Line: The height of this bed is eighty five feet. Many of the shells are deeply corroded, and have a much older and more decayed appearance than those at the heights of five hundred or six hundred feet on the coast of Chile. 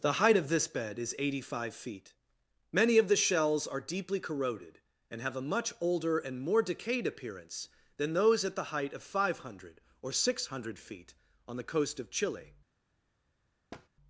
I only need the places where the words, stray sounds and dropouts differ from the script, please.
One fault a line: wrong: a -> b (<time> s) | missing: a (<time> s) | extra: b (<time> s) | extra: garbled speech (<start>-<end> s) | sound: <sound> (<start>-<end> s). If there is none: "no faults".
wrong: heights -> height (8.8 s)
sound: thud (13.7-13.9 s)